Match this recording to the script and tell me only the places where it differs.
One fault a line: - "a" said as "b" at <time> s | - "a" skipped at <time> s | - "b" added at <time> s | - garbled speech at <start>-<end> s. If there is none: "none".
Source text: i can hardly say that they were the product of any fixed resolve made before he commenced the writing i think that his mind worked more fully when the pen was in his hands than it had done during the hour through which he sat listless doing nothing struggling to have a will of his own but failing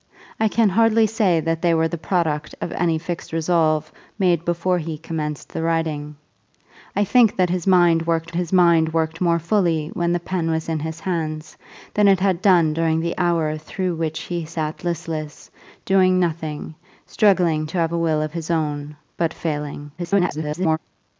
- "his mind worked" added at 8.3 s
- garbled speech at 20.0-20.8 s